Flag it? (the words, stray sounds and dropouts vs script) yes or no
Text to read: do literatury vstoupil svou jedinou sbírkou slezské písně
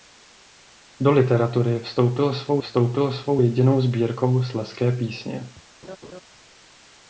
yes